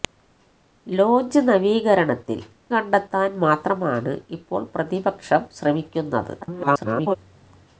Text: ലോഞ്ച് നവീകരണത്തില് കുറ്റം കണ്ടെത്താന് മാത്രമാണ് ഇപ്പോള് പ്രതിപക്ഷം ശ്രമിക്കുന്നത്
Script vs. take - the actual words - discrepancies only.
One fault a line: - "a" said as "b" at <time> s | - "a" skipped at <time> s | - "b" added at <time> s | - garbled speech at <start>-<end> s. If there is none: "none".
- "കുറ്റം" skipped at 2.5 s
- garbled speech at 6.4-7.2 s